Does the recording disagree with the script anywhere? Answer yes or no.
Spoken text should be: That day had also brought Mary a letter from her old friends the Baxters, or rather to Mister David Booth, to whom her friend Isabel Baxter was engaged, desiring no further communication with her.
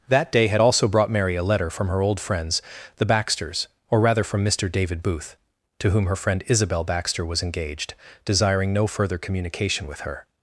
yes